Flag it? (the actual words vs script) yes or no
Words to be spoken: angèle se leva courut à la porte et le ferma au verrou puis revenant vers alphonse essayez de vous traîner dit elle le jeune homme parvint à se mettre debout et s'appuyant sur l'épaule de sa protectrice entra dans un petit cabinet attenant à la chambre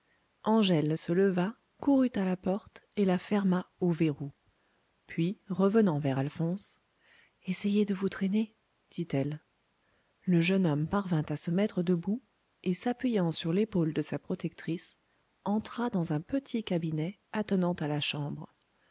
yes